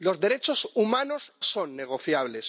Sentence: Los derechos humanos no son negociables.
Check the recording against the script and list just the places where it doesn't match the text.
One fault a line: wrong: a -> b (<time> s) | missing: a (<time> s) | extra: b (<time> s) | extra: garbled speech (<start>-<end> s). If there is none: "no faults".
missing: no (1.3 s)